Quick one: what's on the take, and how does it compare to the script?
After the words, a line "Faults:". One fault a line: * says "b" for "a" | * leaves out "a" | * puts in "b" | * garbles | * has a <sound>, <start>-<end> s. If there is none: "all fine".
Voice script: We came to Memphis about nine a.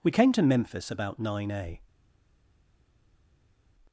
We came to Memphis about nine a.
Faults:
all fine